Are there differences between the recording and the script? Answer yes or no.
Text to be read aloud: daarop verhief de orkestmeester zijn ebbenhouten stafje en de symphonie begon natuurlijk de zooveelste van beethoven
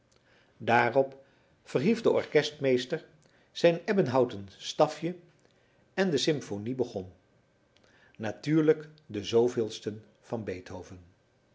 no